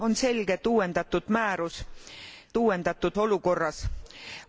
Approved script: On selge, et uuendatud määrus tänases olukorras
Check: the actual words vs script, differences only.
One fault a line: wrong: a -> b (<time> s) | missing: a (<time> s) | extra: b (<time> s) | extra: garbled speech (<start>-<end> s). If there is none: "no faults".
wrong: tänases -> uuendatud (2.6 s)